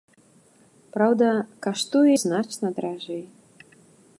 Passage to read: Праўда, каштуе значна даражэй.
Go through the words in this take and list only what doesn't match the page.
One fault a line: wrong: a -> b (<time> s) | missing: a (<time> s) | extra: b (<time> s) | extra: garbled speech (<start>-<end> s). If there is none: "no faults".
no faults